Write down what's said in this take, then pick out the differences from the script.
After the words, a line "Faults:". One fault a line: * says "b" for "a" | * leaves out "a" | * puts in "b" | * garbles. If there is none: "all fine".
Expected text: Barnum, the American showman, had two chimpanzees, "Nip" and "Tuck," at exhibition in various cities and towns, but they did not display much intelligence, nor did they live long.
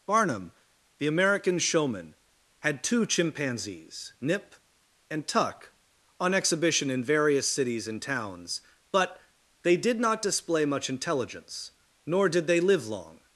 Barnum, the American showman, had two chimpanzees, "Nip" and "Tuck," on exhibition in various cities and towns, but they did not display much intelligence, nor did they live long.
Faults:
* says "on" for "at"